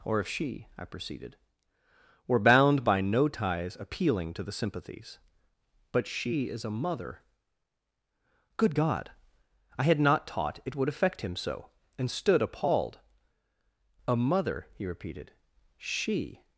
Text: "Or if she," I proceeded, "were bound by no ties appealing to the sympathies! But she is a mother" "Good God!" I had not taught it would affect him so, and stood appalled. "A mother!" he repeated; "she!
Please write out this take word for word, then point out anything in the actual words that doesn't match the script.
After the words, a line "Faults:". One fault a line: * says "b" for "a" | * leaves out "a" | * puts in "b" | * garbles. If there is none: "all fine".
"Or if she," I proceeded, "were bound by no ties appealing to the sympathies! But she is a mother" "Good God!" I had not taught it would affect him so, and stood appalled. "A mother!" he repeated; "she!
Faults:
all fine